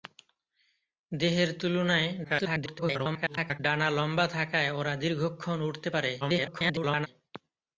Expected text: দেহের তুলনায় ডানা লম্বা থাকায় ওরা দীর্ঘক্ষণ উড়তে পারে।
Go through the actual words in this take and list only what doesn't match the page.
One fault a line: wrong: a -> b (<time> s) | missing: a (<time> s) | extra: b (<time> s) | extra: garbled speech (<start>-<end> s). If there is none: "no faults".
extra: garbled speech (2.2-3.6 s)
extra: garbled speech (6.2-7.1 s)